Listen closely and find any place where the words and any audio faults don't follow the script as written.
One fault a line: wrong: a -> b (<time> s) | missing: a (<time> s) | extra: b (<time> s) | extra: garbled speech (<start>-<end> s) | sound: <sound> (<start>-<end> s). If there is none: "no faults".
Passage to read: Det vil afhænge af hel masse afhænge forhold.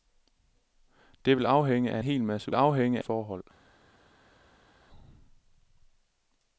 no faults